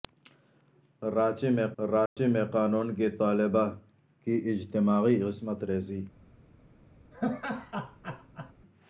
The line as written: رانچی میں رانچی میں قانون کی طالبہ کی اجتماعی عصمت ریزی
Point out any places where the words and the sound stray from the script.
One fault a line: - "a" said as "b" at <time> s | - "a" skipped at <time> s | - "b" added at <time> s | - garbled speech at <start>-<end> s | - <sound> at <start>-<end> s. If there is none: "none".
- dropout at 2.1-2.2 s
- laugh at 7.1-8.5 s